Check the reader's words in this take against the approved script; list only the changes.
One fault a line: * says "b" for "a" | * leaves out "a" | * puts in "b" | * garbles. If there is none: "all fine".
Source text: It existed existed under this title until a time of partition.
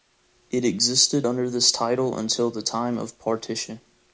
* leaves out "existed"
* says "the" for "a"